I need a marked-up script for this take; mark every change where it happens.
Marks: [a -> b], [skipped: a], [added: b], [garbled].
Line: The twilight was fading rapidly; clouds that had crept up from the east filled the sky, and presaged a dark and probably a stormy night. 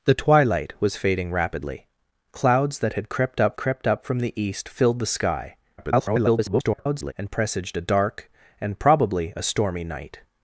The twilight was fading rapidly; clouds that had crept up [added: crept up] from the east filled the sky, [garbled] and presaged a dark and probably a stormy night.